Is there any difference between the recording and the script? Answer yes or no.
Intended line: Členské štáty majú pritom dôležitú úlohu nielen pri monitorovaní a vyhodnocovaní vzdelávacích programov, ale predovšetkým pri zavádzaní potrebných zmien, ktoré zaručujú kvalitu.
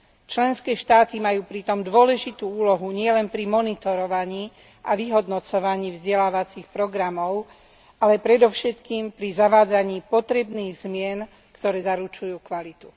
no